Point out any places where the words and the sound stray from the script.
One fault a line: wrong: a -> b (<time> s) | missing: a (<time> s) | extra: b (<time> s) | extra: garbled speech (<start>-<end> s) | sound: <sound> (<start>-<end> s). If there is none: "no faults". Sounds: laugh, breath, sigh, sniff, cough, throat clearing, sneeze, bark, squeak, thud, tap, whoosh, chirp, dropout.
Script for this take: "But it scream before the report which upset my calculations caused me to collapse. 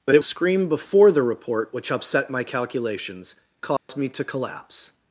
sound: dropout (3.8-3.9 s)